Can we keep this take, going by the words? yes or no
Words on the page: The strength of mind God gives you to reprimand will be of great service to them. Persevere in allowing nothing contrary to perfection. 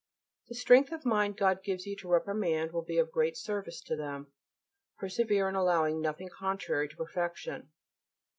yes